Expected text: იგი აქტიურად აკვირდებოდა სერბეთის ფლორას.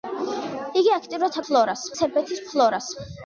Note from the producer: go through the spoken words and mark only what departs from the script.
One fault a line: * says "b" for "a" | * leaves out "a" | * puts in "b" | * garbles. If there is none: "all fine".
* says "ფლორას" for "აკვირდებოდა"